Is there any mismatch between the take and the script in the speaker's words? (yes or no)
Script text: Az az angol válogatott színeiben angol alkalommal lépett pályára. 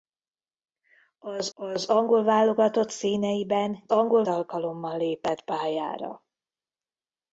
no